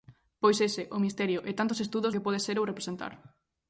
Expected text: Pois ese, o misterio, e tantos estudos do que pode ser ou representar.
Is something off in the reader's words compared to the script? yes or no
yes